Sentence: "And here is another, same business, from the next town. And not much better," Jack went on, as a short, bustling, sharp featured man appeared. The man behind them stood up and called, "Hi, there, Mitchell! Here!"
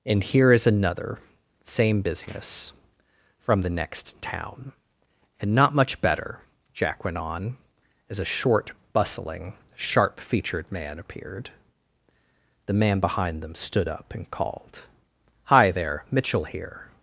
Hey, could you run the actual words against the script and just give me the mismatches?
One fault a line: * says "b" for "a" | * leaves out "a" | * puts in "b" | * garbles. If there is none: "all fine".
all fine